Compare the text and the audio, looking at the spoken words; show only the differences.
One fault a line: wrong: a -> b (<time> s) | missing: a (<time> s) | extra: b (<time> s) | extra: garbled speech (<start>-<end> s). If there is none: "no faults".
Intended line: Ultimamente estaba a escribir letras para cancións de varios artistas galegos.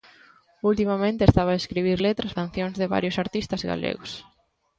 missing: para (2.3 s)